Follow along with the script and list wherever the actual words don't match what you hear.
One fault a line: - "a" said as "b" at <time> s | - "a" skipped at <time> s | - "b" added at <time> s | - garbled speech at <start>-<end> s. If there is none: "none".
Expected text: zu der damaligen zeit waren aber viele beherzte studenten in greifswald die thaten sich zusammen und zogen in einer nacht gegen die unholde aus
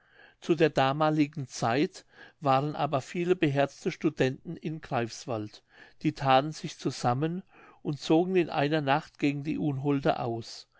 none